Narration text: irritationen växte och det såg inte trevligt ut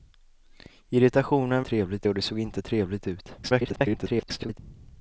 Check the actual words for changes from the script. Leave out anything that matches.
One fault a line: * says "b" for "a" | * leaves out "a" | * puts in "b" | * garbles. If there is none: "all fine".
* says "trevligt" for "växte"
* garbles